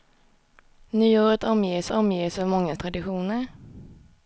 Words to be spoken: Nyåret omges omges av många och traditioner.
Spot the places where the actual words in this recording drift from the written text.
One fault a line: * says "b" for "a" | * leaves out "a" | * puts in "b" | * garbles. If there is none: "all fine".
all fine